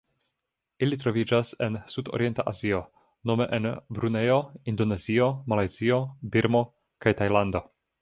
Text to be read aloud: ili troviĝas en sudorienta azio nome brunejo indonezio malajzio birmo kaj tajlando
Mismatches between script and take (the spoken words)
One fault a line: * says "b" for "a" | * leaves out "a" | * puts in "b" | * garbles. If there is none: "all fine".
* puts in "en"